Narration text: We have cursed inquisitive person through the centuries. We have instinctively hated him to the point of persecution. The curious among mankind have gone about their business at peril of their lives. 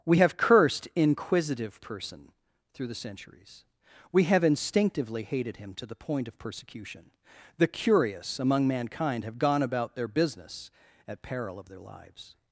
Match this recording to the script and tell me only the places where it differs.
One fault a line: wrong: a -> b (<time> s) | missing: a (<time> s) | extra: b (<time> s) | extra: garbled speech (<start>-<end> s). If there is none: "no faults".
no faults